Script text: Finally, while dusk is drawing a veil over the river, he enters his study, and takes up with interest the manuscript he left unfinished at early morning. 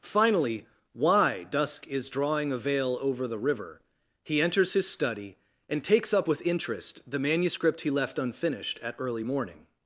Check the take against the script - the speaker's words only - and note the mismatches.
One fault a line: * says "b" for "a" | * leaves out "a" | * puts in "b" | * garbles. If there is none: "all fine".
* says "why" for "while"